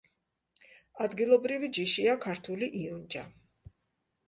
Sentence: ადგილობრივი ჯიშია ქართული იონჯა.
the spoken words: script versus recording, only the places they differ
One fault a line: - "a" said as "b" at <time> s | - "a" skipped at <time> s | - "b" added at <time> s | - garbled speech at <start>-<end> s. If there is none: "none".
none